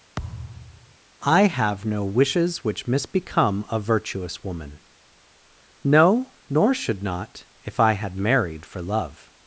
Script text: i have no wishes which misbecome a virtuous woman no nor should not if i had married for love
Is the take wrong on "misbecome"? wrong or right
right